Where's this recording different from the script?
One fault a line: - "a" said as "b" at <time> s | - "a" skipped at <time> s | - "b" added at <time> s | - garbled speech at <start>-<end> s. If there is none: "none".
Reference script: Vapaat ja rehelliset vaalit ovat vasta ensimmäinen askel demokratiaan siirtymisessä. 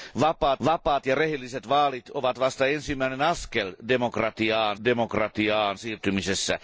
- "vapaat" added at 0.6 s
- "demokratiaan" added at 4.8 s